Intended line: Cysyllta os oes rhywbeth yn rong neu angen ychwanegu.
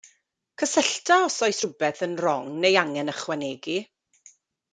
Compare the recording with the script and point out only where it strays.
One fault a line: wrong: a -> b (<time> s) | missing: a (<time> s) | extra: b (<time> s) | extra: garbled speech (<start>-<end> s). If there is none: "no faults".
no faults